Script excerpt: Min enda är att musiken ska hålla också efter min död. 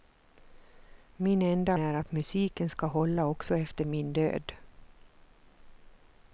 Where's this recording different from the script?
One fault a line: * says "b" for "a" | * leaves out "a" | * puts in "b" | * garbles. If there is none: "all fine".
all fine